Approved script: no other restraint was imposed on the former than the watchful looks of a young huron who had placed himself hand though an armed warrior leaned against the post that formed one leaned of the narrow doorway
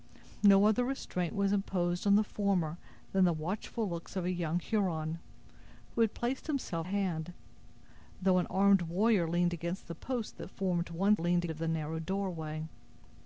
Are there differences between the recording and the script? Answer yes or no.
no